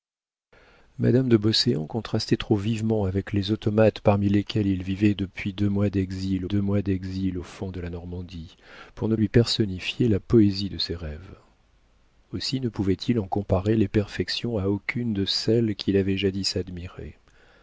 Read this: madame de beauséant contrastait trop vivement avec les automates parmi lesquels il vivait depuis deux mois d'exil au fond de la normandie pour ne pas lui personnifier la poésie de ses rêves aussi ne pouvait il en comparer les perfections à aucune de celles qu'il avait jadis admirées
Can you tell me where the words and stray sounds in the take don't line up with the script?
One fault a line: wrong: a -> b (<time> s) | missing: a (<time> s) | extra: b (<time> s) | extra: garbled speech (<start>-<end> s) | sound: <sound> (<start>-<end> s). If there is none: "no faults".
extra: deux mois d'exil (6.5 s)
missing: pas (9.1 s)